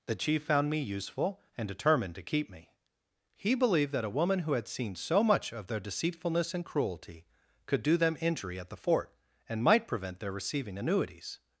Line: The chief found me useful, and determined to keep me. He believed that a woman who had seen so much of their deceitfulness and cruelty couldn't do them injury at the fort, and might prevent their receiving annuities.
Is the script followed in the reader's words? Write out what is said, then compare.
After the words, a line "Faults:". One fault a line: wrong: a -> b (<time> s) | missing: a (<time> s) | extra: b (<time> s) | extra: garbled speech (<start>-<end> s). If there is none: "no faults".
The chief found me useful, and determined to keep me. He believed that a woman who had seen so much of their deceitfulness and cruelty could do them injury at the fort, and might prevent their receiving annuities.
Faults:
wrong: couldn't -> could (7.7 s)